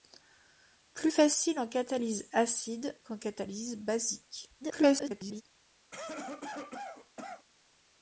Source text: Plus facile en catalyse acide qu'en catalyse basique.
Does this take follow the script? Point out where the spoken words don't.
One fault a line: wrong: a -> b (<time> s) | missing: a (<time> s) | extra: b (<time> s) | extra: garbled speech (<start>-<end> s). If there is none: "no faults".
extra: garbled speech (4.6-5.4 s)